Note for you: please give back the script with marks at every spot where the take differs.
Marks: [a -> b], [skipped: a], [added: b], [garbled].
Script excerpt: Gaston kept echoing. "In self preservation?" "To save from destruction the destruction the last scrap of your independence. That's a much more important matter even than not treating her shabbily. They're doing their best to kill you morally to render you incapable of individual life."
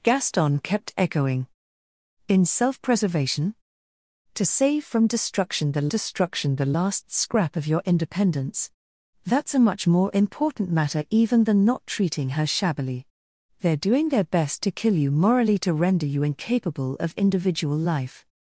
Gaston kept echoing. "In self preservation?" "To save from destruction the destruction the last scrap of your independence. That's a much more important matter even than not treating her shabbily. They're doing their best to kill you morally to render you incapable of individual life."